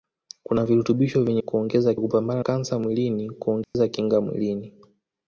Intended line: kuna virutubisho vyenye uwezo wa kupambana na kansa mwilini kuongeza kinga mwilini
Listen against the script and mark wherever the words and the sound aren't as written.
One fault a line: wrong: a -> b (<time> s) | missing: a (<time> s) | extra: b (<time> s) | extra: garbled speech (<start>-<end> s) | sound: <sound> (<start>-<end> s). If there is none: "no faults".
wrong: uwezo -> kuongeza (1.4 s)
missing: na (2.4 s)
sound: dropout (3.6-3.7 s)